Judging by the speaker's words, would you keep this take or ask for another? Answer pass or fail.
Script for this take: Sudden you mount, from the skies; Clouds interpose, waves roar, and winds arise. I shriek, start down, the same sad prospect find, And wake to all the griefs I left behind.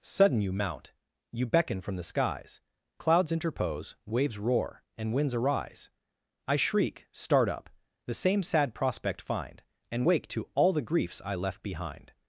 fail